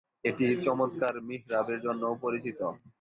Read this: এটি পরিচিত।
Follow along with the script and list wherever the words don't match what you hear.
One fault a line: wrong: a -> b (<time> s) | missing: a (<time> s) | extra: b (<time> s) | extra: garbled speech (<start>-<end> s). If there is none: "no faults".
extra: চমৎকার মিহরাবের জন্যও (0.7 s)